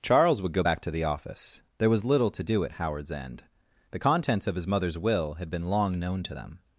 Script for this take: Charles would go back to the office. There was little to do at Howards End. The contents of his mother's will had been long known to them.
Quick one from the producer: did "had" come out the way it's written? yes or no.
yes